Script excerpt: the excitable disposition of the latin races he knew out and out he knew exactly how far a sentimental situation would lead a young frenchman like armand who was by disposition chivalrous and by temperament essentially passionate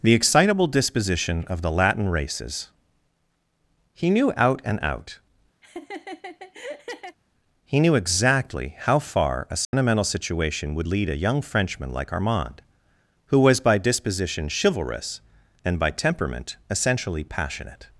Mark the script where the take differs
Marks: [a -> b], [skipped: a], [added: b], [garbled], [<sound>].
the excitable disposition of the latin races he knew out and out [laugh] he knew exactly how far a sentimental [dropout] situation would lead a young frenchman like armand who was by disposition chivalrous and by temperament essentially passionate